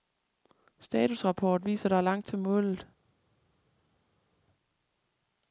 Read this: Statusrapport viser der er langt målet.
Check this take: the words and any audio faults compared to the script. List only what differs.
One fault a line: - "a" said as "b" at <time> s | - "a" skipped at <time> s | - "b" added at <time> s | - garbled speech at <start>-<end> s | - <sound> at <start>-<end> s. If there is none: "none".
- "til" added at 2.3 s